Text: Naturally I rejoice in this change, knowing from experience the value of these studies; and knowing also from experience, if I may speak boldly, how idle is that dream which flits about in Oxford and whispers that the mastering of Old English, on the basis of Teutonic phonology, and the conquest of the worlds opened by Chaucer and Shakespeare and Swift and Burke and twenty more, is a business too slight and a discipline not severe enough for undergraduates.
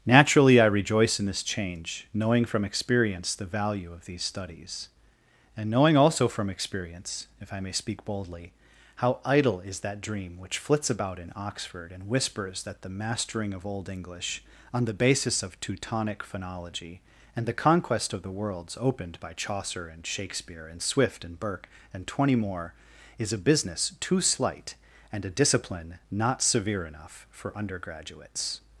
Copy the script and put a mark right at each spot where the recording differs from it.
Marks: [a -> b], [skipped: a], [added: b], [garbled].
Naturally I rejoice in this change, knowing from experience the value of these studies; and knowing also from experience, if I may speak boldly, how idle is that dream which flits about in Oxford and whispers that the mastering of Old English, on the basis of Teutonic phonology, and the conquest of the worlds opened by Chaucer and Shakespeare and Swift and Burke and twenty more, is a business too slight and a discipline not severe enough for undergraduates.